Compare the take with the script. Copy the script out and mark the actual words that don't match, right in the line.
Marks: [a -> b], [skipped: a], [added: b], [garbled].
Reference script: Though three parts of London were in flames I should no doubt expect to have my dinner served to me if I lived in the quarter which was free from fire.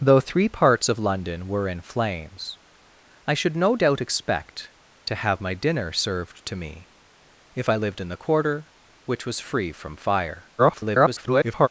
Though three parts of London were in flames I should no doubt expect to have my dinner served to me if I lived in the quarter which was free from fire. [garbled]